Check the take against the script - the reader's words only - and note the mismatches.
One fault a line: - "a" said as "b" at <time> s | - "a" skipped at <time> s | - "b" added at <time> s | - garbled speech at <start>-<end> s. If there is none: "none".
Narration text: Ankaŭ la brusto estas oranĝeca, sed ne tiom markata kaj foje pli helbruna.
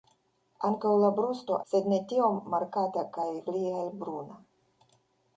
- "estas oranĝeca" skipped at 1.6 s
- "foje" skipped at 3.3 s